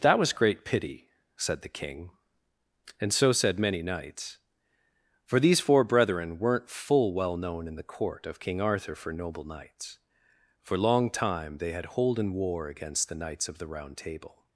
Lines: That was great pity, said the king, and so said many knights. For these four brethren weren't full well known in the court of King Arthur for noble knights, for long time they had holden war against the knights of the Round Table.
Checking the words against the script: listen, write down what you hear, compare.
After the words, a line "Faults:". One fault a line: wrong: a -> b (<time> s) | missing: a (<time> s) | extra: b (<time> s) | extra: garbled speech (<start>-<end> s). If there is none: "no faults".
That was great pity, said the king, and so said many knights. For these four brethren weren't full well known in the court of King Arthur for noble knights, for long time they had holden war against the knights of the Round Table.
Faults:
no faults